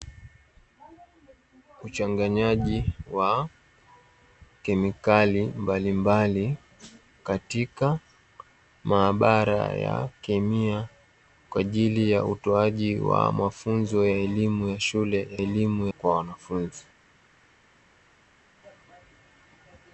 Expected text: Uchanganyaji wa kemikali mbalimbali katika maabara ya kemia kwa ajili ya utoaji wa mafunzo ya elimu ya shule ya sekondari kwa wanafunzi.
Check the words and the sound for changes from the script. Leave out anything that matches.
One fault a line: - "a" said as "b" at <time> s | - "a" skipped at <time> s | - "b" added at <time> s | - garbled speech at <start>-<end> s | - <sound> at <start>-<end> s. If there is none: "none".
- "sekondari" said as "elimu" at 15.4 s